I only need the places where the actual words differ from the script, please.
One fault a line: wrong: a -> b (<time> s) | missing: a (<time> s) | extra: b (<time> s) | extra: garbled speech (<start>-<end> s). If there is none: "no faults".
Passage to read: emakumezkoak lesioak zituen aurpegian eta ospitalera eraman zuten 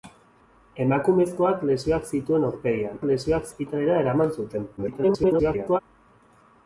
wrong: eta -> lesioak (3.1 s)
extra: garbled speech (4.8-5.8 s)